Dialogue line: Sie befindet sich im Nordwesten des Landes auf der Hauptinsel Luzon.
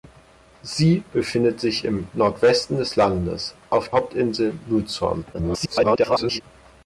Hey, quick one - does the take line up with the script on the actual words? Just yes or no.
no